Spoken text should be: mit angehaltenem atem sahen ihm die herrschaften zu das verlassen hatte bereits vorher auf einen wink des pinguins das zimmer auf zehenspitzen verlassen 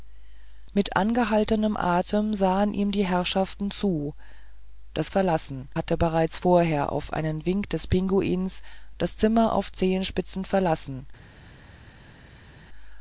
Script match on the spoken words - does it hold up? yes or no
yes